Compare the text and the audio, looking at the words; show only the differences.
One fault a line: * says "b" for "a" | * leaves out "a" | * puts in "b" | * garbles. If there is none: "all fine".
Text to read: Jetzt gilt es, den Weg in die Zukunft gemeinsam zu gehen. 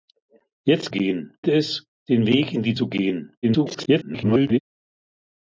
* says "gehen" for "gilt"
* leaves out "Zukunft gemeinsam"
* garbles